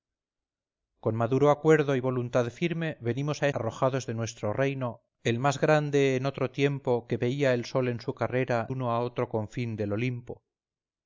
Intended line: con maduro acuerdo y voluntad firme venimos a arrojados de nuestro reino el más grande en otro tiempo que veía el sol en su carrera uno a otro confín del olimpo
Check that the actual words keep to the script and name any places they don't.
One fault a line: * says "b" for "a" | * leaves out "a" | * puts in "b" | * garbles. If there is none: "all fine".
all fine